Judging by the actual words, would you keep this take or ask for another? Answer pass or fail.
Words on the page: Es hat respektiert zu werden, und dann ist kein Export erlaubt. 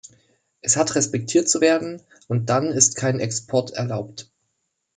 pass